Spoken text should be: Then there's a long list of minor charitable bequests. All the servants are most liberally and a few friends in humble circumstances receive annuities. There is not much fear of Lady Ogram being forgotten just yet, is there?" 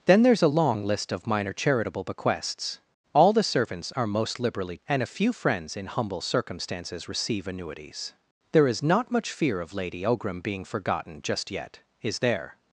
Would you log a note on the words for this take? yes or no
no